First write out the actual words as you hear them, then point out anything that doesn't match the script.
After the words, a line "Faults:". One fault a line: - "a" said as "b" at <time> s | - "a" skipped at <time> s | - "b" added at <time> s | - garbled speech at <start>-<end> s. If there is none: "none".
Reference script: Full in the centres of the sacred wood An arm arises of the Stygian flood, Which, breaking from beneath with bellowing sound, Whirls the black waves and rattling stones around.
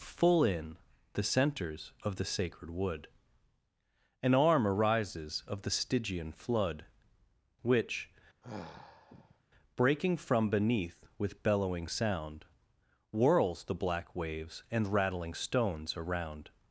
Full in the centres of the sacred wood An arm arises of the Stygian flood, Which, breaking from beneath with bellowing sound, Whirls the black waves and rattling stones around.
Faults:
none